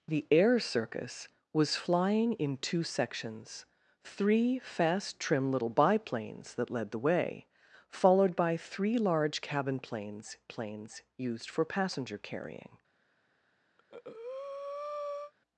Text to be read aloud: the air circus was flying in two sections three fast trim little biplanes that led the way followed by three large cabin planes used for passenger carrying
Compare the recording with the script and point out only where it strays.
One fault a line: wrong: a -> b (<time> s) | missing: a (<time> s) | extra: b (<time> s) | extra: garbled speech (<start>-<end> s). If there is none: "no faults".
extra: planes (10.5 s)